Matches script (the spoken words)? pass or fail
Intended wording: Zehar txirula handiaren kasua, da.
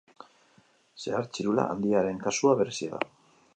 fail